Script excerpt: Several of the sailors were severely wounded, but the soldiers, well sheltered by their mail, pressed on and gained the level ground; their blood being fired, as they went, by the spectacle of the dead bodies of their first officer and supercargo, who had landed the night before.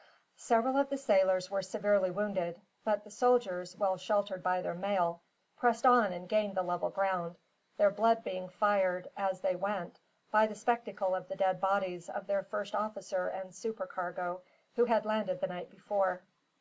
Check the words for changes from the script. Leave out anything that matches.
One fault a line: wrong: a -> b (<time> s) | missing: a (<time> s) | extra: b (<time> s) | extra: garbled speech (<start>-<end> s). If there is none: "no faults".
no faults